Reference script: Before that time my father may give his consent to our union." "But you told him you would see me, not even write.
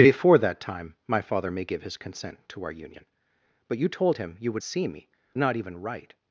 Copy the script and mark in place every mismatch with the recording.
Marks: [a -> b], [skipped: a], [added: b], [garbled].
Before that time my father may give his consent to our union." "But you told him you would see me, not even write.